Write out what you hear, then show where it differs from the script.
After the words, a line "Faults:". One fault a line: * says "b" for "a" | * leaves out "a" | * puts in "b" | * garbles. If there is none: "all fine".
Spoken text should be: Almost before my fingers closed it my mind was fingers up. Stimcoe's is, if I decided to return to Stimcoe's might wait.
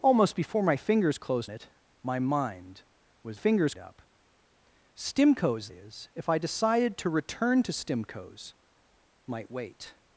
Almost before my fingers closed it my mind was fingers up. Stimcoe's is, if I decided to return to Stimcoe's might wait.
Faults:
all fine